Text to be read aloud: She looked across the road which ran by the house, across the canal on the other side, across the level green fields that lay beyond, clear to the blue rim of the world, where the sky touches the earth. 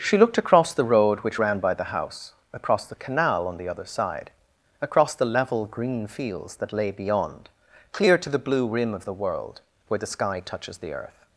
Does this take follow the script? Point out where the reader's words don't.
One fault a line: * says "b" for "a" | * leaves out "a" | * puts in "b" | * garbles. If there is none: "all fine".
all fine